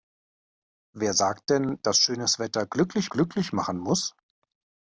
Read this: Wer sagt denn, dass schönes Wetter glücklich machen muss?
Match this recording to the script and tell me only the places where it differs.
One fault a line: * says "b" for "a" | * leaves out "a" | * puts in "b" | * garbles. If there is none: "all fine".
* puts in "glücklich"